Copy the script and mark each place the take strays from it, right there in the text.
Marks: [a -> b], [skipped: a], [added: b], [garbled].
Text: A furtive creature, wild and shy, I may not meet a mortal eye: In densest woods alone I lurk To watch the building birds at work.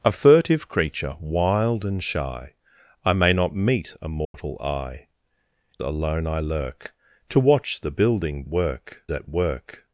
A furtive creature, wild and shy, I may not meet a mortal eye: [skipped: In densest woods] alone I lurk To watch the building [birds -> work] at work.